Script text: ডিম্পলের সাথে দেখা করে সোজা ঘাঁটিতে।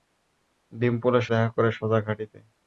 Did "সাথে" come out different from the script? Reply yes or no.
yes